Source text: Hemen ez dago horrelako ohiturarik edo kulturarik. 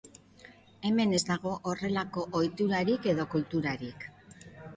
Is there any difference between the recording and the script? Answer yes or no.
no